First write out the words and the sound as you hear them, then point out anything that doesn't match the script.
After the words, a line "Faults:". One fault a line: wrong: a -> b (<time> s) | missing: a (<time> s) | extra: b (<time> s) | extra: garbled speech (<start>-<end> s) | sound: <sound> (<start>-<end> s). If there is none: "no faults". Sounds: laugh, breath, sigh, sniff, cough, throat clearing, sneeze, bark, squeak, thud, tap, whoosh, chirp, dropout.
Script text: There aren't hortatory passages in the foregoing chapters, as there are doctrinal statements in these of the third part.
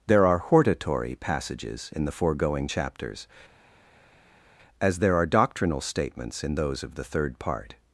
There are hortatory passages in the foregoing chapters, as there are doctrinal statements in those of the third part.
Faults:
wrong: aren't -> are (0.2 s)
wrong: these -> those (6.5 s)